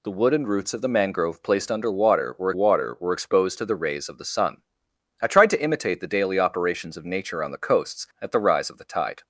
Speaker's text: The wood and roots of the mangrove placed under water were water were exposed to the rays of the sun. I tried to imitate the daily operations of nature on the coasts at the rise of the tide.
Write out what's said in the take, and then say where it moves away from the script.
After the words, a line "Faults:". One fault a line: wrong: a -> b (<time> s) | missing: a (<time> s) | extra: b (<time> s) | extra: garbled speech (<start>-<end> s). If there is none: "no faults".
The wood and roots of the mangrove placed under water were water were exposed to the rays of the sun. I tried to imitate the daily operations of nature on the coasts at the rise of the tide.
Faults:
no faults